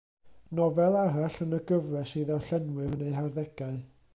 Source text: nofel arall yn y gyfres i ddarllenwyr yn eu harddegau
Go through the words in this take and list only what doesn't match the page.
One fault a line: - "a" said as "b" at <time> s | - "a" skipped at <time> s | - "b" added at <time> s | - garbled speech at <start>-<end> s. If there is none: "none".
none